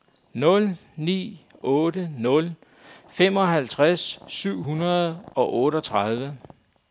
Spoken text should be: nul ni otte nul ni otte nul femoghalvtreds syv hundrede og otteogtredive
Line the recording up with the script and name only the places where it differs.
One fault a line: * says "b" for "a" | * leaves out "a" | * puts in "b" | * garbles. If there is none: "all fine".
* leaves out "ni otte nul"